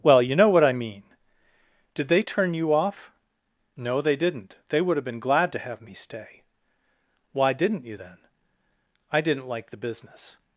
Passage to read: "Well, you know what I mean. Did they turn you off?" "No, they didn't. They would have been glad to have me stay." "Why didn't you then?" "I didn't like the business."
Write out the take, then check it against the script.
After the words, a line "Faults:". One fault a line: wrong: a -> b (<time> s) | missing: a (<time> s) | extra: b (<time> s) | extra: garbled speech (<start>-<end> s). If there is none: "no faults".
"Well, you know what I mean. Did they turn you off?" "No, they didn't. They would have been glad to have me stay." "Why didn't you then?" "I didn't like the business."
Faults:
no faults